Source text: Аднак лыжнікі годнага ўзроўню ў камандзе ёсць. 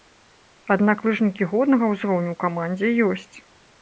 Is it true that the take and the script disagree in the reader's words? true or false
false